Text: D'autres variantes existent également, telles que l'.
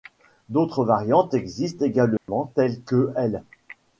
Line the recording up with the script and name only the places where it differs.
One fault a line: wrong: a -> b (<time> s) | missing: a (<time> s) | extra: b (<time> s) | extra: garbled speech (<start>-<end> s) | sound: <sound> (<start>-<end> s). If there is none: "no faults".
sound: dropout (2.2-2.3 s)